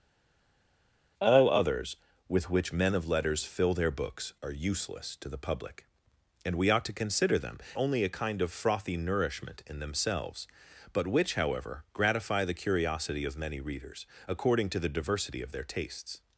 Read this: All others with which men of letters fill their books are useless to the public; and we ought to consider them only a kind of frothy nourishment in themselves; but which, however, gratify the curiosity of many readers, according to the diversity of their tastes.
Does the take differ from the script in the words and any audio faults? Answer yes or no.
no